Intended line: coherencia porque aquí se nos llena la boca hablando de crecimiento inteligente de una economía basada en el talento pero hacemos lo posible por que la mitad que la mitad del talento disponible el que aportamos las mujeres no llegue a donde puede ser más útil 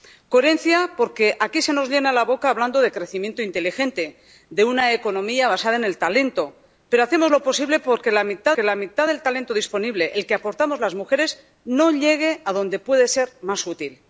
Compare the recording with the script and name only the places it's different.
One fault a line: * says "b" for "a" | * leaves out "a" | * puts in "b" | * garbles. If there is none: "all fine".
all fine